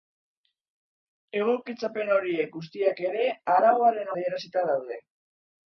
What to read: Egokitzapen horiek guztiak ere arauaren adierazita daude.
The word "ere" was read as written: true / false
true